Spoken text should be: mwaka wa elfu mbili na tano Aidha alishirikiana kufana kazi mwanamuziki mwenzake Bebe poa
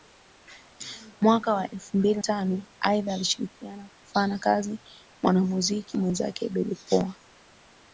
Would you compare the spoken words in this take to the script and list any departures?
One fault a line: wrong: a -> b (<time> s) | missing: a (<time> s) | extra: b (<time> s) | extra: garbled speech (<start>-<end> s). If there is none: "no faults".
missing: na (2.2 s)